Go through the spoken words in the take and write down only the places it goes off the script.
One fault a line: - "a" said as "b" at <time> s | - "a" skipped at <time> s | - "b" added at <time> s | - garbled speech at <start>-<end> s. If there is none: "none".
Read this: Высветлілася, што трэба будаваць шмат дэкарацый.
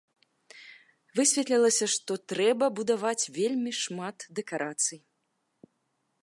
- "вельмі" added at 3.4 s